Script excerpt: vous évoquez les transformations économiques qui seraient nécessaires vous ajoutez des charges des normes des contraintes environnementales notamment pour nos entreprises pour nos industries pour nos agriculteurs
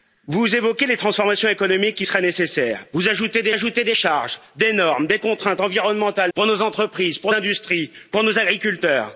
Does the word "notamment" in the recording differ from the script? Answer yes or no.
yes